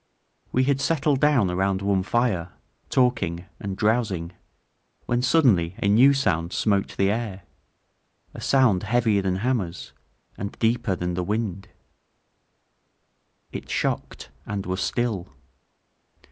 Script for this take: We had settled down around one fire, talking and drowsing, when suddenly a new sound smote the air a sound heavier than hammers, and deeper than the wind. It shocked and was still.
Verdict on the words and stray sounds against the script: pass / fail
pass